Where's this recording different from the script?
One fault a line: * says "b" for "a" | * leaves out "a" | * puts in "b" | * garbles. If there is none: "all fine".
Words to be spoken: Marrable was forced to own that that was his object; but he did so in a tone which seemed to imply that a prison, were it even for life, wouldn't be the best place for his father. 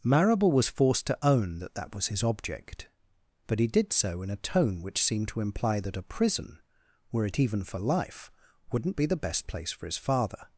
all fine